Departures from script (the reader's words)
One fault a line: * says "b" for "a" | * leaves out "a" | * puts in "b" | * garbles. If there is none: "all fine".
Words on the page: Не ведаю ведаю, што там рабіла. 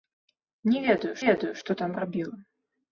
all fine